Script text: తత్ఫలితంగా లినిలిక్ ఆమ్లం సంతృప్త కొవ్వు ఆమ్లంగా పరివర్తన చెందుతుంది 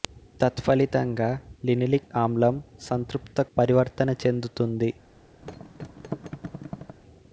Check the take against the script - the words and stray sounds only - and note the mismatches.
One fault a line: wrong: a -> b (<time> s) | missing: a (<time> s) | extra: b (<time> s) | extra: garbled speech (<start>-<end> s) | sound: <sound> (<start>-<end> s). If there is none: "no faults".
missing: కొవ్వు ఆమ్లంగా (3.4 s)
sound: thud (5.4-7.0 s)